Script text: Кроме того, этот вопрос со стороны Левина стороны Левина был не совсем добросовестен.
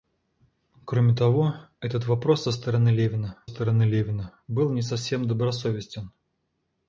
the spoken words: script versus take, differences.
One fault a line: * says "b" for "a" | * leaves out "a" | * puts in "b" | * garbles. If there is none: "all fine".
all fine